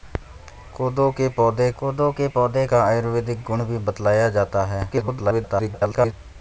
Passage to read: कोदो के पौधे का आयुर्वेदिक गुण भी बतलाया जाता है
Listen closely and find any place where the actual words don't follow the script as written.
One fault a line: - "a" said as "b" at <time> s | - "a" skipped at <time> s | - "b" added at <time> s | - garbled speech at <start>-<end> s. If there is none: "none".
- "कोदो के पौधे" added at 1.8 s
- garbled speech at 4.9-6.1 s